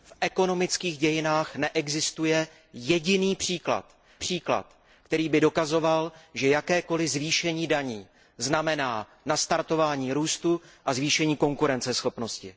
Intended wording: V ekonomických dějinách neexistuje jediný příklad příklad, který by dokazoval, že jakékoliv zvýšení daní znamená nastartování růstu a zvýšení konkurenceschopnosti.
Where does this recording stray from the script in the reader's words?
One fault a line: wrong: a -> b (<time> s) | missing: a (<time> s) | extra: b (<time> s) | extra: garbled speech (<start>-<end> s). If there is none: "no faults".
no faults